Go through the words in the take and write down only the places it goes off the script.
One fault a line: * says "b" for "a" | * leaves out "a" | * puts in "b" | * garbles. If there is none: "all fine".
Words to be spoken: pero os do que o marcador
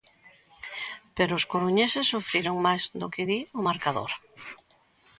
* puts in "coruñeses sufriron máis"
* puts in "di"